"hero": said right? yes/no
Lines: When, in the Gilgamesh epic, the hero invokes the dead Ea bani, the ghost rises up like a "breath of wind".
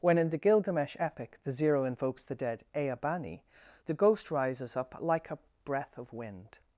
no